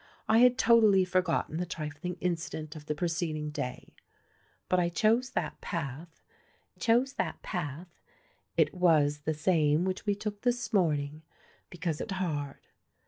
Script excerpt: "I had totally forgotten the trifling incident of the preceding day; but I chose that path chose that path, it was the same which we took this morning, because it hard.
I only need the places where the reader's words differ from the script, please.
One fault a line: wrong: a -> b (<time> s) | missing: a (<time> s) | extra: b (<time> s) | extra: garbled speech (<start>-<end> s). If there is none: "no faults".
no faults